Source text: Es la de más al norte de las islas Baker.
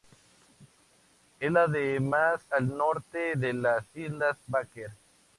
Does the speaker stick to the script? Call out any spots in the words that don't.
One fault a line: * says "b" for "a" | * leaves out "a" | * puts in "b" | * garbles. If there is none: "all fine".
all fine